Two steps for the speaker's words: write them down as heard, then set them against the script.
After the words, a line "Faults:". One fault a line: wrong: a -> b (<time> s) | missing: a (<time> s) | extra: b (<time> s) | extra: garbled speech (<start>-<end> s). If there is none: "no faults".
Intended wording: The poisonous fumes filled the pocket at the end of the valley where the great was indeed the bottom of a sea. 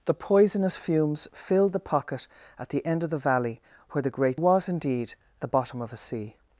The poisonous fumes filled the pocket at the end of the valley where the great was indeed the bottom of a sea.
Faults:
no faults